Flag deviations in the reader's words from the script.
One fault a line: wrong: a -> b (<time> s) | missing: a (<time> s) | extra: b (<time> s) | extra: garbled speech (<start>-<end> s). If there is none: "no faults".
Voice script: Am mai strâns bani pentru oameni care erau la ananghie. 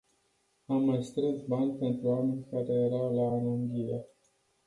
no faults